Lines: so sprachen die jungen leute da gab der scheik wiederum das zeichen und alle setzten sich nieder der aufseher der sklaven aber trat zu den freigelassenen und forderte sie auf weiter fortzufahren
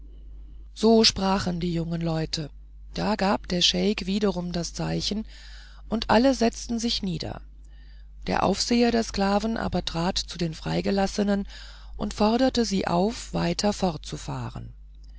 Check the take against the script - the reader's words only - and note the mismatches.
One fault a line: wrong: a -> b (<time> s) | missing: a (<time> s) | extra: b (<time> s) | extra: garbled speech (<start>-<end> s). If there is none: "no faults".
no faults